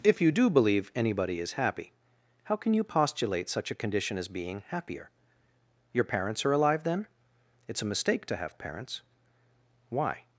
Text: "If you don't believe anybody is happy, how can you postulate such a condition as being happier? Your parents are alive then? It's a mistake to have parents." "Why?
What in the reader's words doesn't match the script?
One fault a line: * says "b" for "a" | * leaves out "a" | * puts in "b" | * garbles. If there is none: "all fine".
* says "do" for "don't"